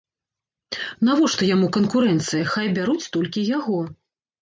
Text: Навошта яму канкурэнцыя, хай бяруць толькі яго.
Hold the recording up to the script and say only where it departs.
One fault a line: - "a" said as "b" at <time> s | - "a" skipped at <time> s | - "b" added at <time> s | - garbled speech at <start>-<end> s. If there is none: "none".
none